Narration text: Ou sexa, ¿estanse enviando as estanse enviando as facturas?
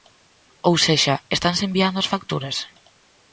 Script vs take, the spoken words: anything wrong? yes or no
yes